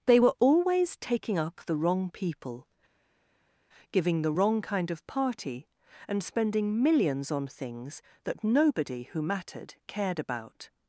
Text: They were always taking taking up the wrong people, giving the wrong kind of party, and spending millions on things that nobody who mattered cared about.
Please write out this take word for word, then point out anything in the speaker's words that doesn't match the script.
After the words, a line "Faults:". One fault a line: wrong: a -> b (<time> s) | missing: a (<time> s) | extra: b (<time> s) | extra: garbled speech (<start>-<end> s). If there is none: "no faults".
They were always taking up the wrong people, giving the wrong kind of party, and spending millions on things that nobody who mattered cared about.
Faults:
missing: taking (1.4 s)